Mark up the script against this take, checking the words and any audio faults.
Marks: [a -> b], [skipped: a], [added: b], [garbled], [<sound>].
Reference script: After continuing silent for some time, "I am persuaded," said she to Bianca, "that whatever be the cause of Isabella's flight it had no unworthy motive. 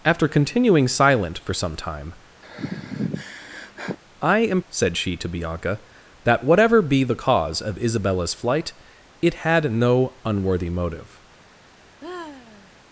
After continuing silent for some time, [sigh] "I am [skipped: persuaded,"] said she to Bianca, "that whatever be the cause of Isabella's flight it had no unworthy motive. [sigh]